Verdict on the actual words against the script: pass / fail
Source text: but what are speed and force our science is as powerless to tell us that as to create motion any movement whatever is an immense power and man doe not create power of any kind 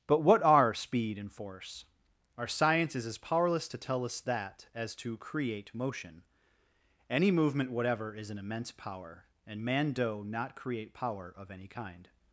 pass